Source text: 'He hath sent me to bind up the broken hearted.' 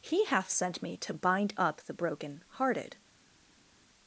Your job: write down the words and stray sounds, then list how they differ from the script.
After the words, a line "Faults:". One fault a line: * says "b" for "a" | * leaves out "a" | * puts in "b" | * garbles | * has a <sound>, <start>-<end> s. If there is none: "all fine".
'He hath sent me to bind up the broken hearted.'
Faults:
all fine